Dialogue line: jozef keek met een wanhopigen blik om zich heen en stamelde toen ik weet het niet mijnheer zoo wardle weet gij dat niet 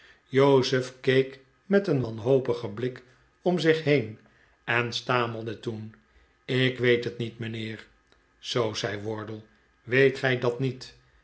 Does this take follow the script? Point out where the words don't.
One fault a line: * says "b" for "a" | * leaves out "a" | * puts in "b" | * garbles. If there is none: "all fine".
* puts in "zei"